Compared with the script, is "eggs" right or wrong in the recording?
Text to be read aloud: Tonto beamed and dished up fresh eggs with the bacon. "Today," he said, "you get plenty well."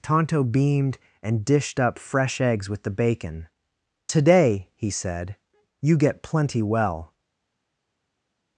right